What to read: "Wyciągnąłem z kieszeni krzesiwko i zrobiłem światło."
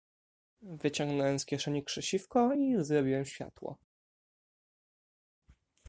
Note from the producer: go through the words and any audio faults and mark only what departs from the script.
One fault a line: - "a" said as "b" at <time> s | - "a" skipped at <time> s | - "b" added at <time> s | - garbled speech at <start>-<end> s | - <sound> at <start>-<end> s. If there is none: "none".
none